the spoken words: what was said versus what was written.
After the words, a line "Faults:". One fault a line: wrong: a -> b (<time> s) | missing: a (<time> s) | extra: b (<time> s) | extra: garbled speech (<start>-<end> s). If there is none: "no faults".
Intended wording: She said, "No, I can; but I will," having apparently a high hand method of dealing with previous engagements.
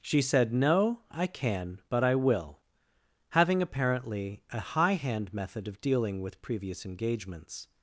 She said, "No, I can; but I will," having apparently a high hand method of dealing with previous engagements.
Faults:
no faults